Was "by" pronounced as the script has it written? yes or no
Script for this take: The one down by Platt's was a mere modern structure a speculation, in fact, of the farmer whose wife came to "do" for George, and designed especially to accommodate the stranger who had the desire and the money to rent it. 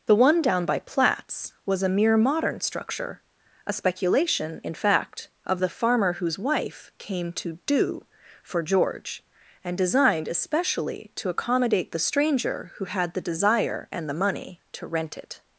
yes